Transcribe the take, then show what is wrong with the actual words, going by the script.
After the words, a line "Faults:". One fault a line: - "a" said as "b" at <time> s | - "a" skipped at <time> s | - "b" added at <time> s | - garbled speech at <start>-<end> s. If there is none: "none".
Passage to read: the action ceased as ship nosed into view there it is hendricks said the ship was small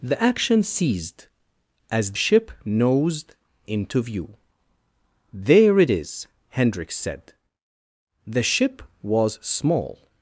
the action ceased as ship nosed into view there it is hendricks said the ship was small
Faults:
none